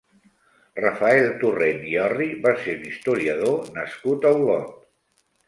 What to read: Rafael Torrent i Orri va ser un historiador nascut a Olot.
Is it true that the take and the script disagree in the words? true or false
false